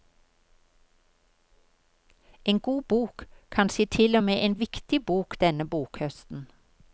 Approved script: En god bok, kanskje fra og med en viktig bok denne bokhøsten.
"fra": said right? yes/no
no